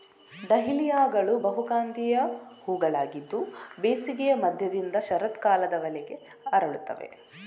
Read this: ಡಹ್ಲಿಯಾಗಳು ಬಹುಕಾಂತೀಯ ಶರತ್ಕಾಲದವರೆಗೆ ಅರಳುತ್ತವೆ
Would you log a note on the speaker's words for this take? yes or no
yes